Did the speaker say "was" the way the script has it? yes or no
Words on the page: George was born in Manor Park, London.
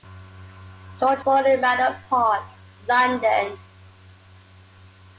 no